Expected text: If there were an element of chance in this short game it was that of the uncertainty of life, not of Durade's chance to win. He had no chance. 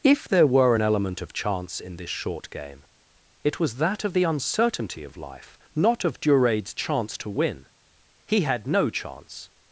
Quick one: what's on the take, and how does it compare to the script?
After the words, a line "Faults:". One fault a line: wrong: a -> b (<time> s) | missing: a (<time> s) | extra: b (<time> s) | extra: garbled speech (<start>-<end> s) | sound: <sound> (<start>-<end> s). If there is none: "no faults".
If there were an element of chance in this short game it was that of the uncertainty of life, not of Durade's chance to win. He had no chance.
Faults:
no faults